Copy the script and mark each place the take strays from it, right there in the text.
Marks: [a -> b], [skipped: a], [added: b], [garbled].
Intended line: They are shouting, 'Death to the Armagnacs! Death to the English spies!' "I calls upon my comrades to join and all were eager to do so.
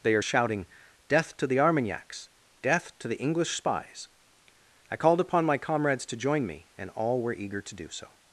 They are shouting, 'Death to the Armagnacs! Death to the English spies!' "I [calls -> called] upon my comrades to join [added: me] and all were eager to do so.